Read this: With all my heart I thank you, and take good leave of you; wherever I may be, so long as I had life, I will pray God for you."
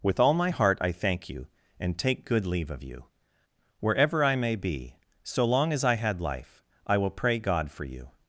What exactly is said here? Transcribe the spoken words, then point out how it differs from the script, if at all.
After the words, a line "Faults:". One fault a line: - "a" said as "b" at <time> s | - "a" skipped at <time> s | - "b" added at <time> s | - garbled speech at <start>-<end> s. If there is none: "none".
With all my heart I thank you, and take good leave of you; wherever I may be, so long as I had life, I will pray God for you."
Faults:
none